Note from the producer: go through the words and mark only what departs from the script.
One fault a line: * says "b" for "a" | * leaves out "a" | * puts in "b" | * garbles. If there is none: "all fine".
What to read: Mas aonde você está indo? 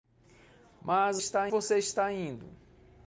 * says "está" for "aonde"